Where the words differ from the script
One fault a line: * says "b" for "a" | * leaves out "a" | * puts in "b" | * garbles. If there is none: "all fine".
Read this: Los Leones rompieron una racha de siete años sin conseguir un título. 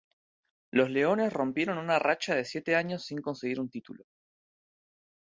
all fine